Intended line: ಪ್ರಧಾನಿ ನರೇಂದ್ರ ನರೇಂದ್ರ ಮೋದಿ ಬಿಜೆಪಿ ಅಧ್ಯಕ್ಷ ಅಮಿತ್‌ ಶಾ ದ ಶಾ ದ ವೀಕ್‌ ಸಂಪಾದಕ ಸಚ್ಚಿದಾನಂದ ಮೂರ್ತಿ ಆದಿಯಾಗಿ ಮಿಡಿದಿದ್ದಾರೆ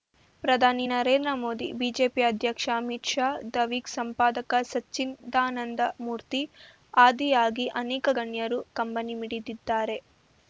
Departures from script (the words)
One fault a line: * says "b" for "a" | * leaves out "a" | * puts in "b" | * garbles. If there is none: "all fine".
* leaves out "ನರೇಂದ್ರ"
* leaves out "ಶಾ ದ"
* puts in "ಅನೇಕ ಗಣ್ಯರು ಕಂಬನಿ"